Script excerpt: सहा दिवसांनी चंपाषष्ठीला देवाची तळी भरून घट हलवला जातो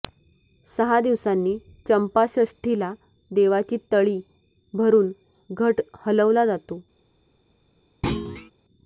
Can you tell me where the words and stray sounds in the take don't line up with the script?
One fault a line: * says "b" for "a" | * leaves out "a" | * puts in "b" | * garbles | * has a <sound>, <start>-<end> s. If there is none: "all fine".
* has a thud, 8.0-8.5 s